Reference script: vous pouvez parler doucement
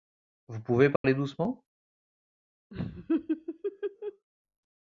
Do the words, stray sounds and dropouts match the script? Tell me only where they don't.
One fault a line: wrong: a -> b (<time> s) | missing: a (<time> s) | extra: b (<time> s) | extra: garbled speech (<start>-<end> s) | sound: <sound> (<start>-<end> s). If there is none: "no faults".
sound: dropout (1.0-1.0 s)
sound: laugh (2.7-4.3 s)